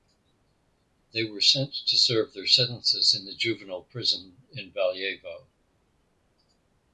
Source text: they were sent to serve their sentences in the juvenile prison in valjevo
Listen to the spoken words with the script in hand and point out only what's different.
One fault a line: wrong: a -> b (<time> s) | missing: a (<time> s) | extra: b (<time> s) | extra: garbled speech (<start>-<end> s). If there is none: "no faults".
no faults